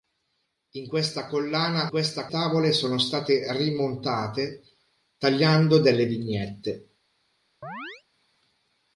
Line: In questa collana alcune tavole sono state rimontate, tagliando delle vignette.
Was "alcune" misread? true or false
true